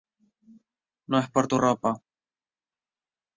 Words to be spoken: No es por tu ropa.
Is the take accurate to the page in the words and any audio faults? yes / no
yes